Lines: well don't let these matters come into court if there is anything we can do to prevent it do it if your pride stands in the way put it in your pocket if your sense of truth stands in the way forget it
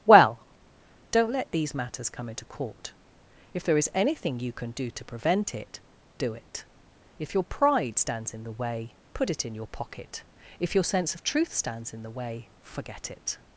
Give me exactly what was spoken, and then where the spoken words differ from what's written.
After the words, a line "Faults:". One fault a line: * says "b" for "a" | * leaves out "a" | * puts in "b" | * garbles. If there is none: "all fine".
well don't let these matters come into court if there is anything you can do to prevent it do it if your pride stands in the way put it in your pocket if your sense of truth stands in the way forget it
Faults:
* says "you" for "we"